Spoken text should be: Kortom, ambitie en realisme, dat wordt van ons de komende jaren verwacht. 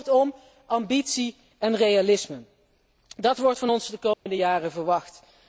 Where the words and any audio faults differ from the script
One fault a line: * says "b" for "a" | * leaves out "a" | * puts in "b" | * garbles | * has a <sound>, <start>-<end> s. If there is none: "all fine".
* has a dropout, 4.1-4.3 s